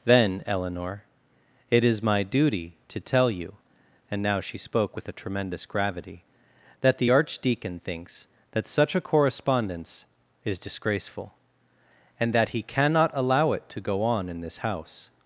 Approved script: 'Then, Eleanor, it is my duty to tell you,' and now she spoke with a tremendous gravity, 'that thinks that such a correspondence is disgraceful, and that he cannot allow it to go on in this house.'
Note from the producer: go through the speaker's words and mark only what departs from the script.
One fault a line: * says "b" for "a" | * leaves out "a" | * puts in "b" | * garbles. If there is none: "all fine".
* puts in "the archdeacon"